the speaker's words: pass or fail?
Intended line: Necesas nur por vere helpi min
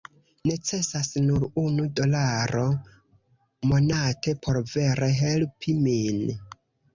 fail